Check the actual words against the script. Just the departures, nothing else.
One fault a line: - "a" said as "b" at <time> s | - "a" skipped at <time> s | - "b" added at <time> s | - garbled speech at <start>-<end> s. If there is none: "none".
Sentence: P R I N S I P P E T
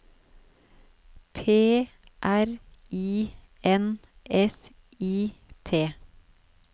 - "P P E" skipped at 5.3 s